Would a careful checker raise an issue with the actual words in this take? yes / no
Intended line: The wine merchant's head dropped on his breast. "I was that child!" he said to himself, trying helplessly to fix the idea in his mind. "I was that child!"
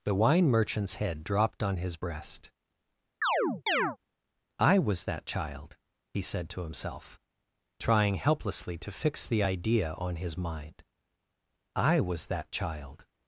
yes